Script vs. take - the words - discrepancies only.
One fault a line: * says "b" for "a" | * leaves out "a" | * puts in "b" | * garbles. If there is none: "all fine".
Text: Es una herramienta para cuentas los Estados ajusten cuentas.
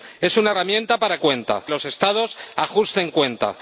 all fine